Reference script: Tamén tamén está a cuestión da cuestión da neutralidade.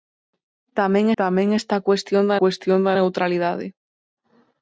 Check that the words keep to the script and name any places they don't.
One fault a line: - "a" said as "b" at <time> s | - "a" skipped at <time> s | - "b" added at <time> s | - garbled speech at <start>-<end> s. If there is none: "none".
none